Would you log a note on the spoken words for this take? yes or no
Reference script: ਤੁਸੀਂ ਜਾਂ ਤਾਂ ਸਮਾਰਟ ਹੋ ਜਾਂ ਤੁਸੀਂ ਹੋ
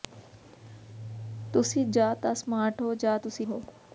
no